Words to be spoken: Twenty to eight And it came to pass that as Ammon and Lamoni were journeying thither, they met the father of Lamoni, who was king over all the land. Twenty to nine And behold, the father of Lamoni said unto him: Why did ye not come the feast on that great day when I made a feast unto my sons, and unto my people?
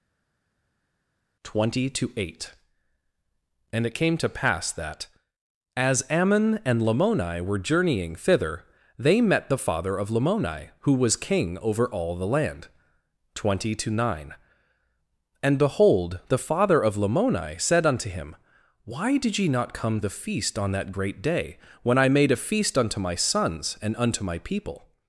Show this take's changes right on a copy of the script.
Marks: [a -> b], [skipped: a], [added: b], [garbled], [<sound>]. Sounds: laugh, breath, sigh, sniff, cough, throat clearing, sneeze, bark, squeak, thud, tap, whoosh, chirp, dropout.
Twenty to eight And it came to pass that as Ammon and Lamoni were journeying thither, they met the father of Lamoni, who was king over all the land. Twenty to nine And behold, the father of Lamoni said unto him: Why did ye not come the feast on that great day when I made a feast unto my sons, and unto my people?